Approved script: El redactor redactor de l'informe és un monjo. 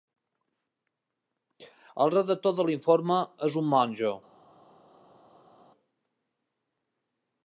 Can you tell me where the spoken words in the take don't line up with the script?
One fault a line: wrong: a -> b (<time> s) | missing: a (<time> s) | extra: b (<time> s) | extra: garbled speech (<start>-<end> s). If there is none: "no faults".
missing: redactor (2.6 s)